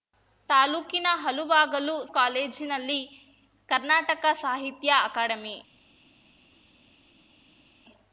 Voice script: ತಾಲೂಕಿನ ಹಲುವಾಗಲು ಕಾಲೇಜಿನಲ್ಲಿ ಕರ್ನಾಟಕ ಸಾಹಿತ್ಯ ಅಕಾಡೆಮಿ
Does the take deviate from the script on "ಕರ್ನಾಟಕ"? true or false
false